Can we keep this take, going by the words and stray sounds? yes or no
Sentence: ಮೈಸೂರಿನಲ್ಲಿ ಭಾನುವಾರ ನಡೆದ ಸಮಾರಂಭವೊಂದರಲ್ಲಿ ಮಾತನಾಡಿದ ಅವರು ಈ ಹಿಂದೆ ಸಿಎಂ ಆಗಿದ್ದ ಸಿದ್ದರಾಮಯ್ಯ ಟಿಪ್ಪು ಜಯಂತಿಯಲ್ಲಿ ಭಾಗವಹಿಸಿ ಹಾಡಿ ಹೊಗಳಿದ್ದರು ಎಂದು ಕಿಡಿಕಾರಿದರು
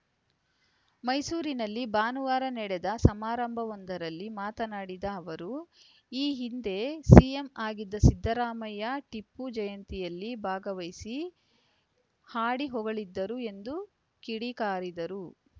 yes